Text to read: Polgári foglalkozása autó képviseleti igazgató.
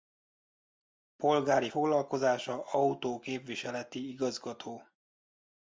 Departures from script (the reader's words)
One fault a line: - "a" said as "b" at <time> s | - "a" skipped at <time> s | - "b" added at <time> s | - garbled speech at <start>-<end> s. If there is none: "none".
none